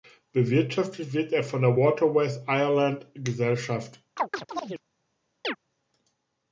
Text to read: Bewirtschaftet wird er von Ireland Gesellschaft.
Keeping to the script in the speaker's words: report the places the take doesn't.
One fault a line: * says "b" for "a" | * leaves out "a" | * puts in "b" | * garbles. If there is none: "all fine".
* puts in "der Waterways"